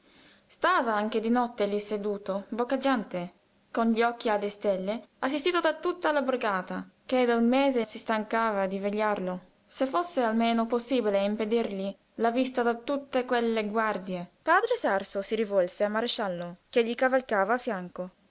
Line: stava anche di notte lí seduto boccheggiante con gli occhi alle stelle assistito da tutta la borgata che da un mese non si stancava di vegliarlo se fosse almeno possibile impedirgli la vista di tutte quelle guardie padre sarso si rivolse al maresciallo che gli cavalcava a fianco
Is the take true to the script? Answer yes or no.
no